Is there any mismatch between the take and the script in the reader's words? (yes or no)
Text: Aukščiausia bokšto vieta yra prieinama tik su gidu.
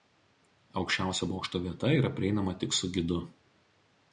no